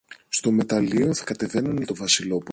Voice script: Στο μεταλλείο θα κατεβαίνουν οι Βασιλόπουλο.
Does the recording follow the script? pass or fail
pass